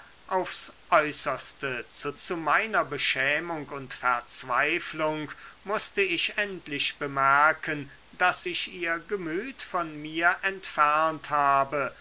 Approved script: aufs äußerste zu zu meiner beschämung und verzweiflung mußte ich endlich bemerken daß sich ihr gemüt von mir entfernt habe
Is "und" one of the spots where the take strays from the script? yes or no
no